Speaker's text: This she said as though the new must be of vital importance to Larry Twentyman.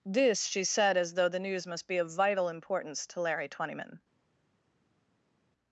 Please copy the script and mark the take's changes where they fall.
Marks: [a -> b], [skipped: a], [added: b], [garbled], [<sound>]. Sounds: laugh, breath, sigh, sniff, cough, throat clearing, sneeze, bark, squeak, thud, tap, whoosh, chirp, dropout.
This she said as though the [new -> news] must be of vital importance to Larry Twentyman.